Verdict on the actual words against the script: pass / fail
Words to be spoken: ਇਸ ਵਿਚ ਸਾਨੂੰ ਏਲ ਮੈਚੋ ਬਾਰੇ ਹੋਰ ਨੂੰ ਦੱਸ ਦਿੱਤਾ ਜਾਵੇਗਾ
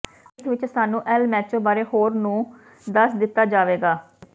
pass